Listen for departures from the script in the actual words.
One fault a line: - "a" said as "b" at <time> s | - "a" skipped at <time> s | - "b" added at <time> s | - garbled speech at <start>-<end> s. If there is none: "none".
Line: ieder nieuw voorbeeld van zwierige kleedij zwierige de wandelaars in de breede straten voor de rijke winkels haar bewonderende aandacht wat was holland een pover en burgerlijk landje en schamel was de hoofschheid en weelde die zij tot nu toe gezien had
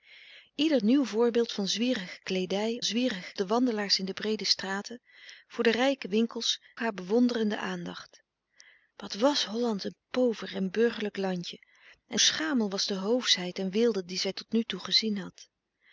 none